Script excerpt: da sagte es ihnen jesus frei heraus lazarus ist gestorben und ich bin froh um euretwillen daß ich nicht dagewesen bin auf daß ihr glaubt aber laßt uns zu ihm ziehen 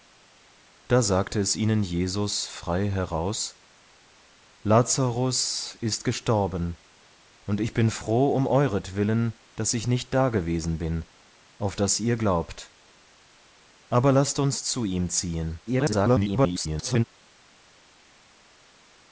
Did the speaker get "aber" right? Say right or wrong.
right